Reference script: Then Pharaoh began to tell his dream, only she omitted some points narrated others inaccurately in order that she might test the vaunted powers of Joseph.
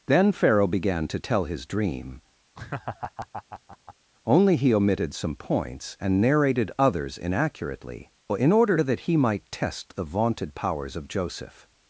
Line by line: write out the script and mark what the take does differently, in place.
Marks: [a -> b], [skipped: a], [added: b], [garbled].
Then Pharaoh began to tell his dream, only [she -> he] omitted some points [added: and] narrated others inaccurately in order that [she -> he] might test the vaunted powers of Joseph.